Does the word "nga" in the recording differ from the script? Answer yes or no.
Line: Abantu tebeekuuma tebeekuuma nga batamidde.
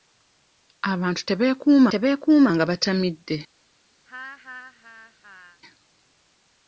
no